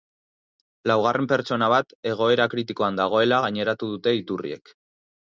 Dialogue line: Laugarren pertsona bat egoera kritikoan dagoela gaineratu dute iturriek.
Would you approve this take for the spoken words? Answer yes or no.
yes